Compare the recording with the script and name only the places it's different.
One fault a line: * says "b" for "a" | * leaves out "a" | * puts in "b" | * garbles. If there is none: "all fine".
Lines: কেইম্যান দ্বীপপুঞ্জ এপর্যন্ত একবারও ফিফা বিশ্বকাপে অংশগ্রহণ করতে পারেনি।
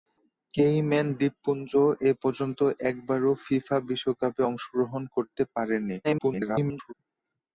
* garbles